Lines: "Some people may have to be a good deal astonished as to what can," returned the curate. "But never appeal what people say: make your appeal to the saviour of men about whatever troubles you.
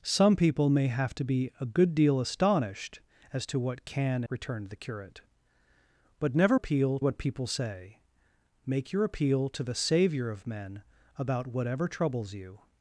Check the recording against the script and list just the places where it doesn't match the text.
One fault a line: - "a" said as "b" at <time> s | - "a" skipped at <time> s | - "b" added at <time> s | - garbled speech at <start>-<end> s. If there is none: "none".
none